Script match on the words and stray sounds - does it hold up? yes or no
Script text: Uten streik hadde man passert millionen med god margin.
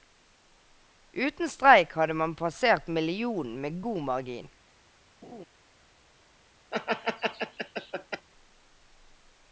no